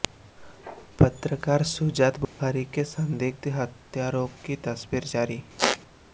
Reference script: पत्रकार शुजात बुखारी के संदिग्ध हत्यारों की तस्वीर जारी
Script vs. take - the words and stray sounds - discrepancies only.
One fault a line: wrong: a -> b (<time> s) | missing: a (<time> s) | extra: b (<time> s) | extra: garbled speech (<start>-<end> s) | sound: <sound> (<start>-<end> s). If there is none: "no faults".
sound: dropout (2.2-2.4 s)
sound: squeak (5.6-5.8 s)